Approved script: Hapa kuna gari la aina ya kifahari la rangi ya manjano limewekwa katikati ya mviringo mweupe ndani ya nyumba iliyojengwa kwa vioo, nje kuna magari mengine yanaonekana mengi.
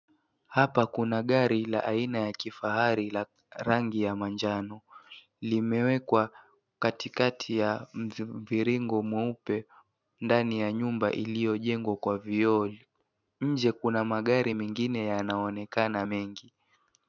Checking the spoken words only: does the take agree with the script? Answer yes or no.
yes